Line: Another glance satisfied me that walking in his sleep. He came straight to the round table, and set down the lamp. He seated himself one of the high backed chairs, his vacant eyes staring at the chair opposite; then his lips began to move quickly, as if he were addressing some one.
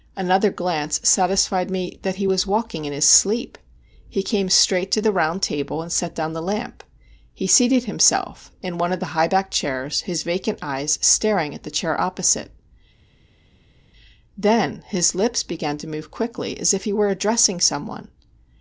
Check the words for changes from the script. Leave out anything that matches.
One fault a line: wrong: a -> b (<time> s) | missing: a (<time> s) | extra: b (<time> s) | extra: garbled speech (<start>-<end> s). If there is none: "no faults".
extra: he was (2.1 s)
extra: in (8.6 s)